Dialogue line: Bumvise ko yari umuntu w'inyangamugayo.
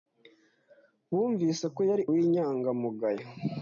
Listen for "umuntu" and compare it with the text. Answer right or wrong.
wrong